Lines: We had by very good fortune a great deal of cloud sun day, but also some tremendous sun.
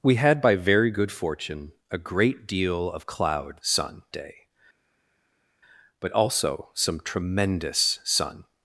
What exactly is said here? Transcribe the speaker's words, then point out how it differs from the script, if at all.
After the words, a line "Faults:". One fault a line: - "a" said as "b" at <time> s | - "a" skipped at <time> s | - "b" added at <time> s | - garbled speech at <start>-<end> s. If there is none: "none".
We had by very good fortune a great deal of cloud sun day, but also some tremendous sun.
Faults:
none